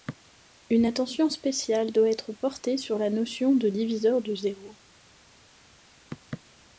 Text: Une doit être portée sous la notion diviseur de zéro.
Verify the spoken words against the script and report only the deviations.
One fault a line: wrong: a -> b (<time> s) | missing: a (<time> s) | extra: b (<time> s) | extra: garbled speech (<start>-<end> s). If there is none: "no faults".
extra: attention spéciale (0.8 s)
wrong: sous -> sur (2.8 s)
extra: de (3.6 s)